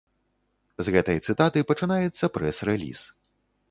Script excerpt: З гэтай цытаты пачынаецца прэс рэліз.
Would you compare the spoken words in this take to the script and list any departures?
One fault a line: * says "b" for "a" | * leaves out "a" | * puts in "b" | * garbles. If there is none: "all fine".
all fine